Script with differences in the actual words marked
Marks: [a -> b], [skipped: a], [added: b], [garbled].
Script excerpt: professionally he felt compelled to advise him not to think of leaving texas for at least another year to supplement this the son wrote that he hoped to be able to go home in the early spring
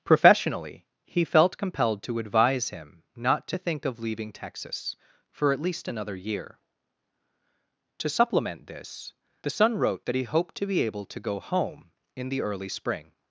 professionally he felt compelled to advise him not to think of leaving texas for at least another year to supplement this the son wrote that he hoped to be able to go home in the early spring